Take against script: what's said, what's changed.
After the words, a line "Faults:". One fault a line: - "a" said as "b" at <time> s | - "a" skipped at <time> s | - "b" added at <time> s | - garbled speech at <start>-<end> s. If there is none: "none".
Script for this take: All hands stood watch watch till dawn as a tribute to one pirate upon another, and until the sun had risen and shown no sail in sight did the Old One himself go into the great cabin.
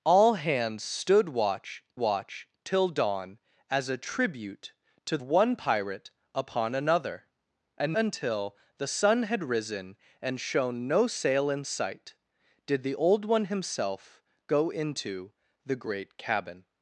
All hands stood watch watch till dawn as a tribute to one pirate upon another, and until the sun had risen and shown no sail in sight did the Old One himself go into the great cabin.
Faults:
none